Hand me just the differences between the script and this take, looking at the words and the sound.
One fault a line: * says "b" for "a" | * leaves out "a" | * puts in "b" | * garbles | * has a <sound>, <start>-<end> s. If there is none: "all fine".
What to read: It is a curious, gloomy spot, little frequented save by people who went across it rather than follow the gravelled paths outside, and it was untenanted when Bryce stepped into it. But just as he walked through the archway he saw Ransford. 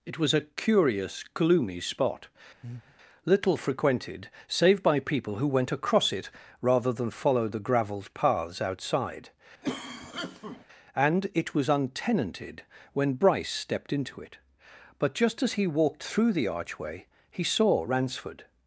* says "was" for "is"
* has a breath, 2.6-3.0 s
* has a cough, 9.6-10.7 s